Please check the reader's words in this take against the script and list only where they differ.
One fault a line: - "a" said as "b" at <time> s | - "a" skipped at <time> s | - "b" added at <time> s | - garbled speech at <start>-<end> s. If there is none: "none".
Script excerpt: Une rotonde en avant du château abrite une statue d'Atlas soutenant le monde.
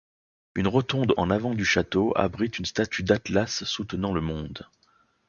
none